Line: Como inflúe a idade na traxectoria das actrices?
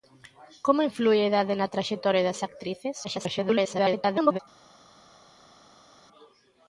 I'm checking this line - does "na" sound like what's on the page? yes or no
yes